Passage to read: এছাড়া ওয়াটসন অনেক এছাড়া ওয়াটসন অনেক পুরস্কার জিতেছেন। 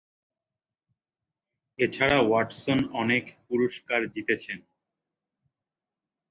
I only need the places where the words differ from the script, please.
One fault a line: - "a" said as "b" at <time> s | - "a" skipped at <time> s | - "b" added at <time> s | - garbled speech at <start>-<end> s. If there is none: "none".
- "এছাড়া ওয়াটসন অনেক" skipped at 3.2 s